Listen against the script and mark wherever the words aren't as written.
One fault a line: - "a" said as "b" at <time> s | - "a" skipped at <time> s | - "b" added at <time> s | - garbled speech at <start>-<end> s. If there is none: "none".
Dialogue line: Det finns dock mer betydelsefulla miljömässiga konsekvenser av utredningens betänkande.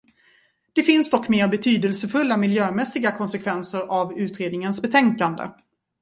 none